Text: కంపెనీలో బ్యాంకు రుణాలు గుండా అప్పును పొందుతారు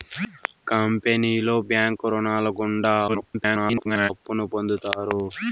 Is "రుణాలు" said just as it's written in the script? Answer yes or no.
yes